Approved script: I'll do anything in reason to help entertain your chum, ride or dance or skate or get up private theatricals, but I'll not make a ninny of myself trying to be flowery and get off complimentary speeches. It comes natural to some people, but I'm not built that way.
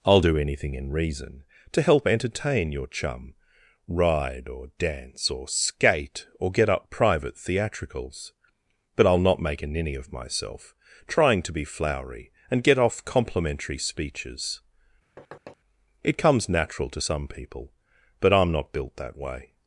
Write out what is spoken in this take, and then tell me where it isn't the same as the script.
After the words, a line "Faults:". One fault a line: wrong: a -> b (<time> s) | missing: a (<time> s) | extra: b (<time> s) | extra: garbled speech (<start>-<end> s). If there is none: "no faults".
I'll do anything in reason to help entertain your chum, ride or dance or skate or get up private theatricals, but I'll not make a ninny of myself trying to be flowery and get off complimentary speeches. It comes natural to some people, but I'm not built that way.
Faults:
no faults